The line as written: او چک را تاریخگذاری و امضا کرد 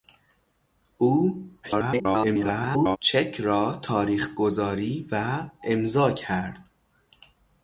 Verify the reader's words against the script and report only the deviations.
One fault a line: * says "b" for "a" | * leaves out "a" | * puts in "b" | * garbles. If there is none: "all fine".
* garbles